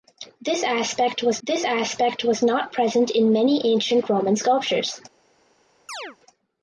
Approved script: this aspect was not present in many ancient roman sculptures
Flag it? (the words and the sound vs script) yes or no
yes